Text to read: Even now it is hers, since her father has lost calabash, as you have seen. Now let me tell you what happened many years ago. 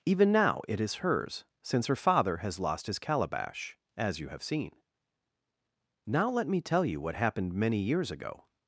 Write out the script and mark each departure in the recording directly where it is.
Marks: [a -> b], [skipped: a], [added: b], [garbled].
Even now it is hers, since her father has lost [added: his] calabash, as you have seen. Now let me tell you what happened many years ago.